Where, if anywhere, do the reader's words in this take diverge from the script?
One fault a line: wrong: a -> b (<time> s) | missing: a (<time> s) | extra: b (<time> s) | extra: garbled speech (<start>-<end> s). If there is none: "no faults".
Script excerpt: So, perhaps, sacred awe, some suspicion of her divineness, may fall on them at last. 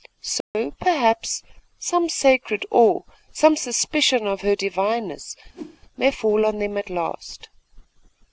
extra: some (1.8 s)